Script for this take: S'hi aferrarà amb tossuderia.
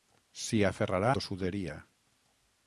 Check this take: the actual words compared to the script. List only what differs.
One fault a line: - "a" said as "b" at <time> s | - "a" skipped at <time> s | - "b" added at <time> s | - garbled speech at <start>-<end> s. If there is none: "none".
- "amb" skipped at 1.1 s